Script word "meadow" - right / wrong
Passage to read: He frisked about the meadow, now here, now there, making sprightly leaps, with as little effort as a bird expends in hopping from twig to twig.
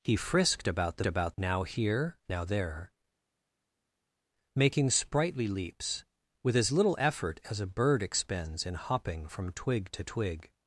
wrong